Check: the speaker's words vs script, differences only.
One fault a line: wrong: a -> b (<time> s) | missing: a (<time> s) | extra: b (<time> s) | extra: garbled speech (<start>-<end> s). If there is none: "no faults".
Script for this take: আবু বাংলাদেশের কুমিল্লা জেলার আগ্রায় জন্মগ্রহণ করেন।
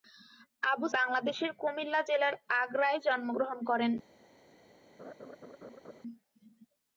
no faults